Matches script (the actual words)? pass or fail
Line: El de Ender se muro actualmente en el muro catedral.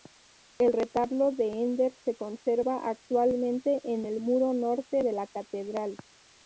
fail